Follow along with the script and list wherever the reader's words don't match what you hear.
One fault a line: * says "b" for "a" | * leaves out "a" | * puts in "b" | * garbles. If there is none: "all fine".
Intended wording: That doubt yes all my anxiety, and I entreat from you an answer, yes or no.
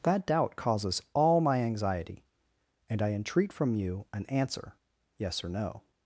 * says "causes" for "yes"